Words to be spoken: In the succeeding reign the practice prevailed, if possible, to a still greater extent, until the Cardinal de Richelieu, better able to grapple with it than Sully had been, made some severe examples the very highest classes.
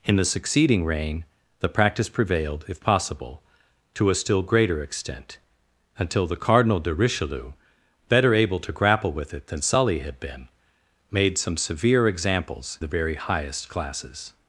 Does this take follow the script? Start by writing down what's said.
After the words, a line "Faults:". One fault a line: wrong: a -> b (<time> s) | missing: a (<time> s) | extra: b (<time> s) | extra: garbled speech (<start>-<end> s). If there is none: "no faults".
In the succeeding reign the practice prevailed, if possible, to a still greater extent, until the Cardinal de Richelieu, better able to grapple with it than Sully had been, made some severe examples the very highest classes.
Faults:
no faults